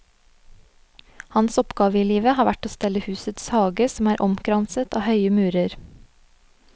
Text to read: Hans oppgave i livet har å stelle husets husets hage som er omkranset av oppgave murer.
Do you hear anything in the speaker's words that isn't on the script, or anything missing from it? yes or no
yes